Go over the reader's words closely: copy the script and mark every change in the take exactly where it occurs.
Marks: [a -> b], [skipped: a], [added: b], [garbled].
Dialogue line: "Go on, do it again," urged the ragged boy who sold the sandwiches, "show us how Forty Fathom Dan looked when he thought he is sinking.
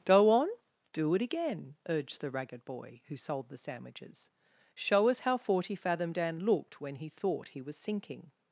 "Go on, do it again," urged the ragged boy who sold the sandwiches, "show us how Forty Fathom Dan looked when he thought he [is -> was] sinking.